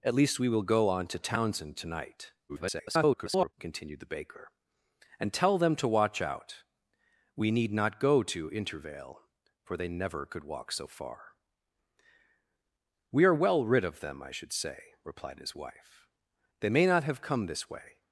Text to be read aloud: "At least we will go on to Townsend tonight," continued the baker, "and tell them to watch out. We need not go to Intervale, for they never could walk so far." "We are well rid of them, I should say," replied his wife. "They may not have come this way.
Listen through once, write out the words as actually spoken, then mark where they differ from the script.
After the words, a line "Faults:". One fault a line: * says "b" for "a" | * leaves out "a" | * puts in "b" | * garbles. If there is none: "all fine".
"At least we will go on to Townsend tonight," [garbled] continued the baker, "and tell them to watch out. We need not go to Intervale, for they never could walk so far." "We are well rid of them, I should say," replied his wife. "They may not have come this way.
Faults:
* garbles